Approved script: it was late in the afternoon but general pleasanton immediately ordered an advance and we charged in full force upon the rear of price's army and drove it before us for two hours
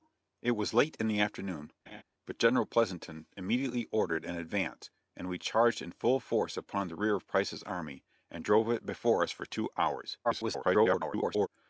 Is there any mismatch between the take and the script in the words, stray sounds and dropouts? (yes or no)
yes